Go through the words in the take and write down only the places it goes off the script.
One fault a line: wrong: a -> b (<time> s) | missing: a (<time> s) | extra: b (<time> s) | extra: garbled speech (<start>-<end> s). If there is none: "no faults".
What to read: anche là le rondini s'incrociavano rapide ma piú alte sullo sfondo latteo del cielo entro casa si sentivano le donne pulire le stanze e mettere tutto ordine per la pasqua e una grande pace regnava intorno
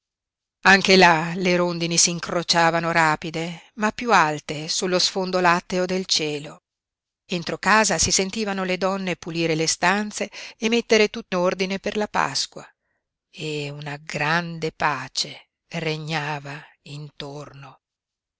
no faults